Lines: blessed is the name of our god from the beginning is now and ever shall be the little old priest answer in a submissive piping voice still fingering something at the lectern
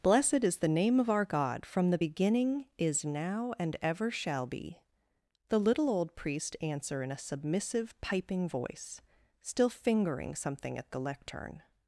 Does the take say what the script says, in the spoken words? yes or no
yes